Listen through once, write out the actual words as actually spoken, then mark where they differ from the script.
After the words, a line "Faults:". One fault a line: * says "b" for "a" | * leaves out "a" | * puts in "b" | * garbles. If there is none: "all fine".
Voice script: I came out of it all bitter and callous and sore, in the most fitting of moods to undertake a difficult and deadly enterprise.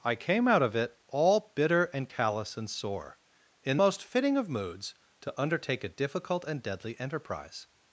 I came out of it all bitter and callous and sore, in most fitting of moods to undertake a difficult and deadly enterprise.
Faults:
* leaves out "the"